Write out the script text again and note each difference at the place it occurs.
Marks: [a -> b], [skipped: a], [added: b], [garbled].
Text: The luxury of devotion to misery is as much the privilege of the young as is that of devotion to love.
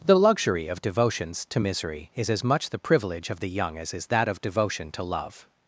The luxury of [devotion -> devotions] to misery is as much the privilege of the young as is that of devotion to love.